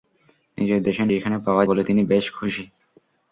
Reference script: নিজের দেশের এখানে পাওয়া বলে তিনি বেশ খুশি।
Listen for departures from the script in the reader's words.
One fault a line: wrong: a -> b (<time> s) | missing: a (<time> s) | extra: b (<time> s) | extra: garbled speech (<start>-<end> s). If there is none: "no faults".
no faults